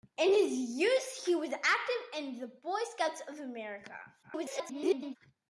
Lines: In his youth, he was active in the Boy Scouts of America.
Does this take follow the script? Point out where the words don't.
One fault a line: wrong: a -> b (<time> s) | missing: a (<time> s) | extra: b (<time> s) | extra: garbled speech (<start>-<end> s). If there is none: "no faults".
extra: garbled speech (4.2-5.2 s)